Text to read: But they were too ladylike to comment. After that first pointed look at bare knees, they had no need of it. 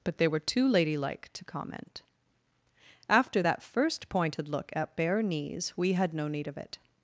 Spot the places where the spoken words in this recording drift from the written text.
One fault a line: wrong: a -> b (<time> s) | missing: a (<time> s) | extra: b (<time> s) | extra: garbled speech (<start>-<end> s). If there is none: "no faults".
wrong: they -> we (5.8 s)